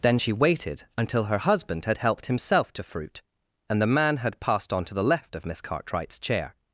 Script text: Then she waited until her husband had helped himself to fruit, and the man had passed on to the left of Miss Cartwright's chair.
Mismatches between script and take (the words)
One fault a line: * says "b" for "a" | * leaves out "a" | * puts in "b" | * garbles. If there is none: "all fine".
all fine